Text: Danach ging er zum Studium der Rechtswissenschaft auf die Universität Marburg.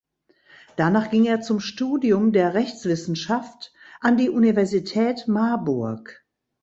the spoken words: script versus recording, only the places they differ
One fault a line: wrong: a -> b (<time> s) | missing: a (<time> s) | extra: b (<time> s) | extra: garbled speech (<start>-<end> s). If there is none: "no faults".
wrong: auf -> an (4.0 s)